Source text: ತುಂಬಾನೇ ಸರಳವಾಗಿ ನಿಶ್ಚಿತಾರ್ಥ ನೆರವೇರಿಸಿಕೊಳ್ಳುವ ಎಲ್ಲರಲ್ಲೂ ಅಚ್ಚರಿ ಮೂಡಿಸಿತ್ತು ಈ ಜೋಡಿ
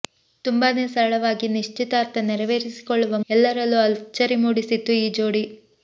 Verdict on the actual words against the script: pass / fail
pass